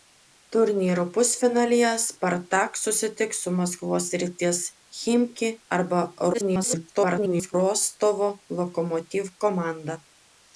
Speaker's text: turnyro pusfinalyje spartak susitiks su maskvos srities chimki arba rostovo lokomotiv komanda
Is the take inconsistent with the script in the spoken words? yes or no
yes